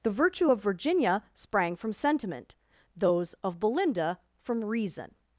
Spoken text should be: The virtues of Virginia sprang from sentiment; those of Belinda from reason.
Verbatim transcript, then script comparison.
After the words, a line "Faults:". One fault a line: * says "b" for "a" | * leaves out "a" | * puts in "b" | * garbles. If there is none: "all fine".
The virtue of Virginia sprang from sentiment; those of Belinda from reason.
Faults:
* says "virtue" for "virtues"